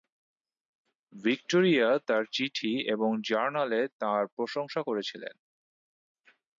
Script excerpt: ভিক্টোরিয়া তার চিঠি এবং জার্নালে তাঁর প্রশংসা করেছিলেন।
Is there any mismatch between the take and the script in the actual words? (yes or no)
no